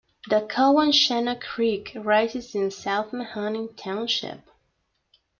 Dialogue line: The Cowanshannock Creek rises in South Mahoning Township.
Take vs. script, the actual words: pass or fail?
pass